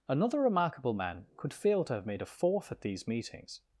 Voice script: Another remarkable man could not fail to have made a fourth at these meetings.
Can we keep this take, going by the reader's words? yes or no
no